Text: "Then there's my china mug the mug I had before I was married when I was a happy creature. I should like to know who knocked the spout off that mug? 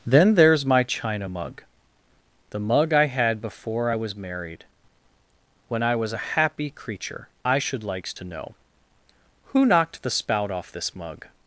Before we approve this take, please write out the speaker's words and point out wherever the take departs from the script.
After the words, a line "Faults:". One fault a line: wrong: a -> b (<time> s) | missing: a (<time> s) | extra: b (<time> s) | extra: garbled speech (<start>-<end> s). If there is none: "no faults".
"Then there's my china mug the mug I had before I was married when I was a happy creature. I should likes to know who knocked the spout off this mug?
Faults:
wrong: like -> likes (7.8 s)
wrong: that -> this (10.7 s)